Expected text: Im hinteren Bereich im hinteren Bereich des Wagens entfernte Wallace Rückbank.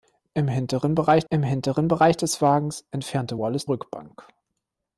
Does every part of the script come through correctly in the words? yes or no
yes